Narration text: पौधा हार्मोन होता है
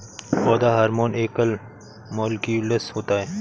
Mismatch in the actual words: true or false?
true